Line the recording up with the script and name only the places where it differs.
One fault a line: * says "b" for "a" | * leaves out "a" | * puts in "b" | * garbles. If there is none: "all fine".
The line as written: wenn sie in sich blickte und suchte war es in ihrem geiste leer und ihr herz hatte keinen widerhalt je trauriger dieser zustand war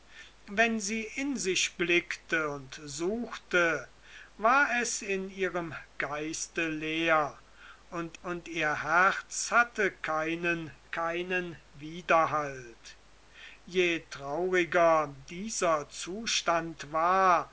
* puts in "und"
* puts in "keinen"